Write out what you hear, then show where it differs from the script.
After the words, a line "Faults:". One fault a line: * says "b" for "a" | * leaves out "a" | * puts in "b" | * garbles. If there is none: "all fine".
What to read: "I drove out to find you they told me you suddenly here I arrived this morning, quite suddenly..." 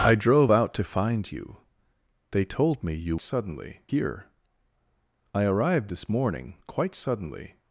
"I drove out to find you they told me you suddenly here I arrived this morning, quite suddenly..."
Faults:
all fine